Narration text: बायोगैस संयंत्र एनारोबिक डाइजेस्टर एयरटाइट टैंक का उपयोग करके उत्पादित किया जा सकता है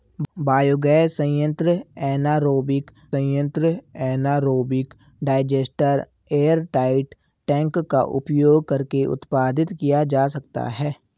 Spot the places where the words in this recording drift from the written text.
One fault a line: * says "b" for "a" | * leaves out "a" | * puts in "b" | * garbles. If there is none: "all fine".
* puts in "संयंत्र एनारोबिक"